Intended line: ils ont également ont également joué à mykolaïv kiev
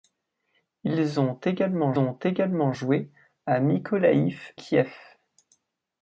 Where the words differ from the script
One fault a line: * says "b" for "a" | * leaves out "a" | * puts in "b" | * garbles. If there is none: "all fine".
all fine